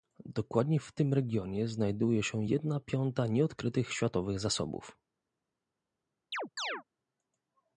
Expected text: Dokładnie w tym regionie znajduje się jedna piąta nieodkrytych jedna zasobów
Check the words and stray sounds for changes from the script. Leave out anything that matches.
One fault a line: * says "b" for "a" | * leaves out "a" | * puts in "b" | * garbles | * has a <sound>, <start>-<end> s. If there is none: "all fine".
* says "światowych" for "jedna"
* has a chirp, 6.3-6.8 s